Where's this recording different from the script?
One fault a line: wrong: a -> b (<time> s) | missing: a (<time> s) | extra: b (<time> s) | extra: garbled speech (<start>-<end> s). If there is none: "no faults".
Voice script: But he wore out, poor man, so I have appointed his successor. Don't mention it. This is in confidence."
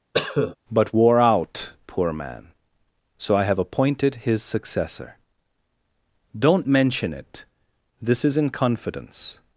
missing: he (0.9 s)